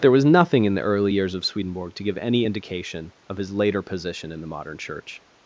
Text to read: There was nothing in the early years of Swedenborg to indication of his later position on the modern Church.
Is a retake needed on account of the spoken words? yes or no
yes